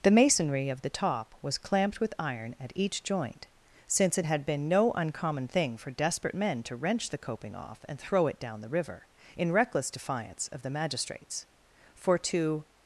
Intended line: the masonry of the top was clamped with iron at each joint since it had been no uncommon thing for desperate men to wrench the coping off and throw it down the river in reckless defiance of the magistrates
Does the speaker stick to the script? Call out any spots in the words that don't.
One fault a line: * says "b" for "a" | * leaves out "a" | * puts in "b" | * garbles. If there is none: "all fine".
* puts in "for to"